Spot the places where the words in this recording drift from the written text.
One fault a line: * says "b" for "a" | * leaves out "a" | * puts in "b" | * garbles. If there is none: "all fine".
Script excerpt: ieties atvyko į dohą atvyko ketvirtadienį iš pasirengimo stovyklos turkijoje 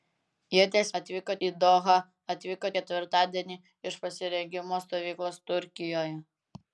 all fine